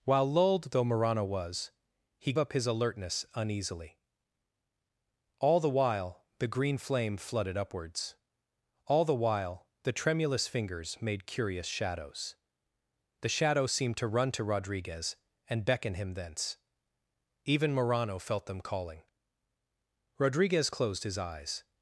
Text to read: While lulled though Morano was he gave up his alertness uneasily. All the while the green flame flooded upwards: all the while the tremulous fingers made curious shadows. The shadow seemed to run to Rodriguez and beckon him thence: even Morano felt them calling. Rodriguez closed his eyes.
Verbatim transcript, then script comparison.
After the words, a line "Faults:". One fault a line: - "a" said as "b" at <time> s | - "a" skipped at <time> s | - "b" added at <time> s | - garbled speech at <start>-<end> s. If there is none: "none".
While lulled though Morano was he up his alertness uneasily. All the while the green flame flooded upwards: all the while the tremulous fingers made curious shadows. The shadow seemed to run to Rodriguez and beckon him thence: even Morano felt them calling. Rodriguez closed his eyes.
Faults:
- "gave" skipped at 2.3 s